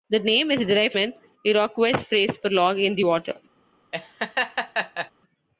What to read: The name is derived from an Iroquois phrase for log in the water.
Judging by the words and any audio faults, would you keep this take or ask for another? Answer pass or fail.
fail